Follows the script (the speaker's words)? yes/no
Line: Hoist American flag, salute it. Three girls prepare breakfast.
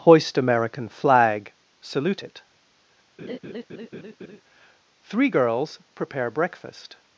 yes